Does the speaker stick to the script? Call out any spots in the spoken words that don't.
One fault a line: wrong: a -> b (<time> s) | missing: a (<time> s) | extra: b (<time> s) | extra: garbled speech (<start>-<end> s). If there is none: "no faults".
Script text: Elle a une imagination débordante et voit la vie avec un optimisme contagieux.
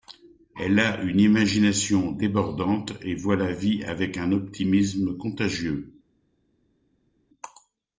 no faults